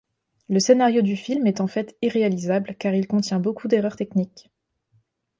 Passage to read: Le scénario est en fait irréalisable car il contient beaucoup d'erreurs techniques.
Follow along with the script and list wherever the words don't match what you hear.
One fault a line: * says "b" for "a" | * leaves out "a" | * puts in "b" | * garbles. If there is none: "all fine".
* puts in "du film"